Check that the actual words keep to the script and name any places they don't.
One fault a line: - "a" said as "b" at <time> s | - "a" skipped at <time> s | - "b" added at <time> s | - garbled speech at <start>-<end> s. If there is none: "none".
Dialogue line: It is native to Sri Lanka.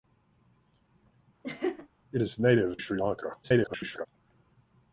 - "to" skipped at 2.8 s
- garbled speech at 3.4-4.1 s